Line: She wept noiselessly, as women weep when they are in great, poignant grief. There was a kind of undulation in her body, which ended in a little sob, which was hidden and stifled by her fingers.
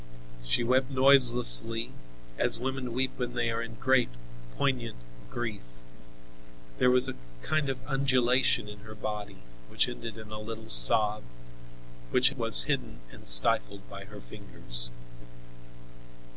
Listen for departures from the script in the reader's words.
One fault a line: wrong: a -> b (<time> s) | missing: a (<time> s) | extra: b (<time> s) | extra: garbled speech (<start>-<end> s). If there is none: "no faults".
no faults